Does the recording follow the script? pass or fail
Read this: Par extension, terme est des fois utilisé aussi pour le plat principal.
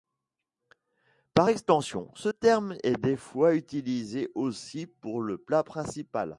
fail